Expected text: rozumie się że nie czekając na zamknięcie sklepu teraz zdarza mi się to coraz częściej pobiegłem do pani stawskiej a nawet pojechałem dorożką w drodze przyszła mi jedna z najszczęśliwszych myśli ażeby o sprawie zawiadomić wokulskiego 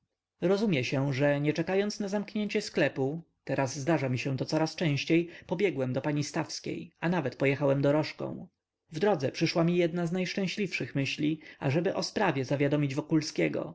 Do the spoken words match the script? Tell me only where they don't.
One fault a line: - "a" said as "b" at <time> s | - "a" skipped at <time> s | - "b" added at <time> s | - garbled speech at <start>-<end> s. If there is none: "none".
none